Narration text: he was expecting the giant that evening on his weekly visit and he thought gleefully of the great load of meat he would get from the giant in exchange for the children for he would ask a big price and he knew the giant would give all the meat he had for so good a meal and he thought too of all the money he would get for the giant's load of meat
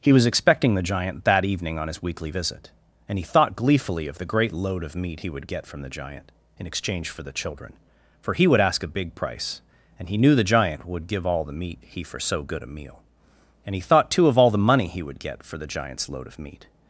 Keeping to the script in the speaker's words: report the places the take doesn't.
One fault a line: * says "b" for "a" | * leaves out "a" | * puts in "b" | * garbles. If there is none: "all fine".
* leaves out "had"